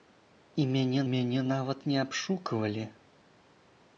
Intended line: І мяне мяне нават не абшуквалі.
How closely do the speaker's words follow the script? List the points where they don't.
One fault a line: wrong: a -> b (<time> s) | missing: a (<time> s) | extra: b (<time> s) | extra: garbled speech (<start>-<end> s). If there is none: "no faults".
no faults